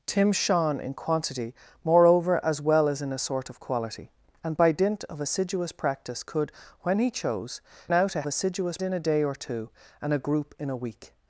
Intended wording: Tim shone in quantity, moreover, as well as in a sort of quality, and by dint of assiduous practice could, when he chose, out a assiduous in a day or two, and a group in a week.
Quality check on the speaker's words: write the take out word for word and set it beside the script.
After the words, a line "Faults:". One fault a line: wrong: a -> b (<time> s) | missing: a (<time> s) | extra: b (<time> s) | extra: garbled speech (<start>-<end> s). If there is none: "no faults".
Tim shone in quantity, moreover, as well as in a sort of quality, and by dint of assiduous practice could, when he chose, out a assiduous in a day or two, and a group in a week.
Faults:
no faults